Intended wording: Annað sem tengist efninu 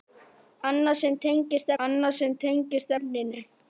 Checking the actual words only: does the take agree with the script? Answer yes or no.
no